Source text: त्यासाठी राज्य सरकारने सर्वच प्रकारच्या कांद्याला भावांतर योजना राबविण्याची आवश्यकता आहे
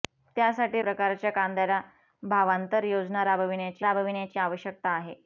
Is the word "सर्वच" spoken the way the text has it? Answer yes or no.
no